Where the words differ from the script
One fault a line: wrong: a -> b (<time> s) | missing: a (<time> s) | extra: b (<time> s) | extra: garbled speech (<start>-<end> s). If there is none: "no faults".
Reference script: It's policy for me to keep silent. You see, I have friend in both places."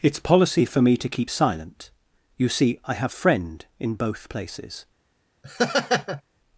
no faults